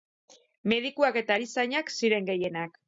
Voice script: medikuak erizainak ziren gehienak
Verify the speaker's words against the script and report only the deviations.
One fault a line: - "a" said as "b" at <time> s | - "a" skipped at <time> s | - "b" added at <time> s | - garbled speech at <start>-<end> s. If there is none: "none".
- "eta" added at 1.2 s